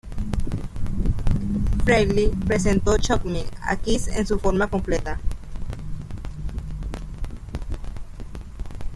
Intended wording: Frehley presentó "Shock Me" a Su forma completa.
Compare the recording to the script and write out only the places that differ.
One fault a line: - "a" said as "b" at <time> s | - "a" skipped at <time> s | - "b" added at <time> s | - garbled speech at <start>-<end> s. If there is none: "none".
- "Kiss en" added at 3.8 s